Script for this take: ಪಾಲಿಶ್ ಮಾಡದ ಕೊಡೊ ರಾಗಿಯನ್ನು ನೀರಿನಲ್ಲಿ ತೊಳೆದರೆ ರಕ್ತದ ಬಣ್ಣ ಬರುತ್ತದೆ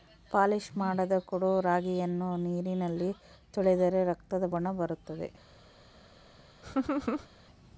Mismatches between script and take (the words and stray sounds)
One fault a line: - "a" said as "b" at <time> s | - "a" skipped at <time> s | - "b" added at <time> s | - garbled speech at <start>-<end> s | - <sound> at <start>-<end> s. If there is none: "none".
- laugh at 6.6-7.3 s